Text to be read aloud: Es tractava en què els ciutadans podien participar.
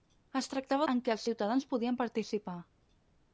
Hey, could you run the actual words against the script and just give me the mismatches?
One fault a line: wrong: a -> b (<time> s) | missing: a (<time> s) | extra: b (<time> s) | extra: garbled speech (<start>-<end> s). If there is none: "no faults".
no faults